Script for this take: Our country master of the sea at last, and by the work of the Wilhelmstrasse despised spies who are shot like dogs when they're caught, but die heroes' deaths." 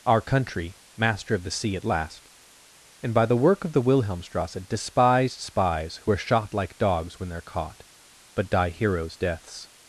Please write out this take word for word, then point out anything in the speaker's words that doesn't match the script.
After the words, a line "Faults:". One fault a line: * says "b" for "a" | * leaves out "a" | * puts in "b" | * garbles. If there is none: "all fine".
Our country master of the sea at last, and by the work of the Wilhelmstrasse despised spies who are shot like dogs when they're caught, but die heroes' deaths."
Faults:
all fine